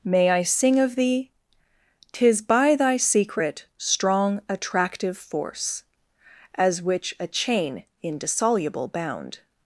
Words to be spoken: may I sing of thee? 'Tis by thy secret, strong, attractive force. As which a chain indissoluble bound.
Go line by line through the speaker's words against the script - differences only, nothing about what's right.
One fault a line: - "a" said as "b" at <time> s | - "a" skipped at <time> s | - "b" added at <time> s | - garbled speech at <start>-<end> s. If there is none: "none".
none